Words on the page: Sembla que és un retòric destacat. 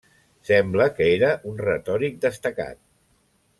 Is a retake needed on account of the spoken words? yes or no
yes